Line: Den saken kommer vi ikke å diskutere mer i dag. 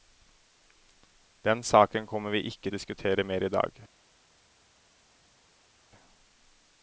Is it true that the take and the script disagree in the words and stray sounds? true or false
false